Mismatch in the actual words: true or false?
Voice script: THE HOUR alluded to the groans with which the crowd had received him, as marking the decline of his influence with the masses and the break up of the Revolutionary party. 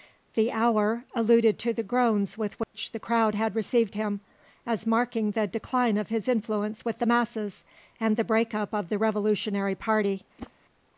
false